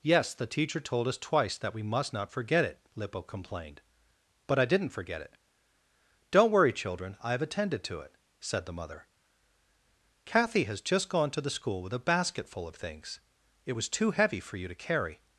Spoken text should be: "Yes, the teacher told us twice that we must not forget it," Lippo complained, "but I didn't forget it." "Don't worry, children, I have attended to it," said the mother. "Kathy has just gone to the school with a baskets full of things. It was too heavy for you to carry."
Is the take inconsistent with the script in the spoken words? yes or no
yes